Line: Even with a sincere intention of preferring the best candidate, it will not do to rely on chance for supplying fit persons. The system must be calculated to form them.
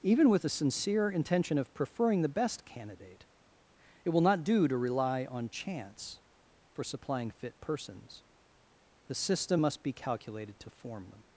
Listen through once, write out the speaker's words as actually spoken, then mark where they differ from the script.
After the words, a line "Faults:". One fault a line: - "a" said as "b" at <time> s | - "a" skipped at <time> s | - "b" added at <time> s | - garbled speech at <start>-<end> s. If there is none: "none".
Even with a sincere intention of preferring the best candidate, it will not do to rely on chance for supplying fit persons. The system must be calculated to form them.
Faults:
none